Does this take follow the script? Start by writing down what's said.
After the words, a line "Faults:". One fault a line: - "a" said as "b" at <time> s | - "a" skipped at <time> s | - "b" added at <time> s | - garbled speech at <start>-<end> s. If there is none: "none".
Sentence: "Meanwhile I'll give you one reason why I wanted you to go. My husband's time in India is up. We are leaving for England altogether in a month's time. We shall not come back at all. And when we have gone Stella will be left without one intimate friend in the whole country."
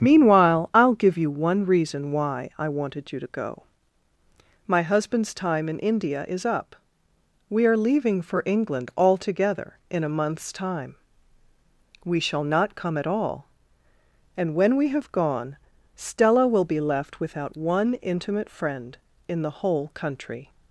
"Meanwhile I'll give you one reason why I wanted you to go. My husband's time in India is up. We are leaving for England altogether in a month's time. We shall not come at all. And when we have gone Stella will be left without one intimate friend in the whole country."
Faults:
- "back" skipped at 13.0 s